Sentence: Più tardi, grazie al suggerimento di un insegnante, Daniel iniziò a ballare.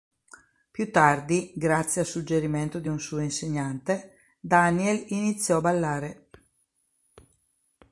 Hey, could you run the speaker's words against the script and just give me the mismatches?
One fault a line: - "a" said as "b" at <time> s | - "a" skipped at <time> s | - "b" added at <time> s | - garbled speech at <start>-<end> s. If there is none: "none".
- "suo" added at 3.0 s